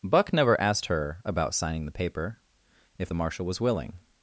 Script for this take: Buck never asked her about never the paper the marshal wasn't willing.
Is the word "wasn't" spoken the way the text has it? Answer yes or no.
no